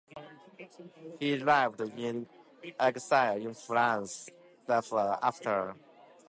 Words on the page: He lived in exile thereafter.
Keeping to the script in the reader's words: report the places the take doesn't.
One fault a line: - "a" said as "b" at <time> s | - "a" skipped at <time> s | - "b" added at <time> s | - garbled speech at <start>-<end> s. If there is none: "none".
- "in France" added at 3.4 s